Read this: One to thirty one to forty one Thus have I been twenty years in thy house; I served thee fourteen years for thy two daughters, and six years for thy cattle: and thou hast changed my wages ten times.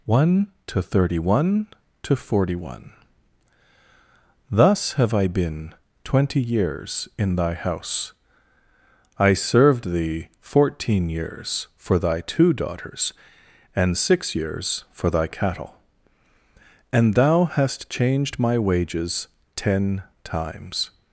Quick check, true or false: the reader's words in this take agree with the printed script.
true